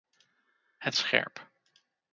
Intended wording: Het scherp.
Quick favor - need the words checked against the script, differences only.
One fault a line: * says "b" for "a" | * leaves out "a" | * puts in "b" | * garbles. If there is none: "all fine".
all fine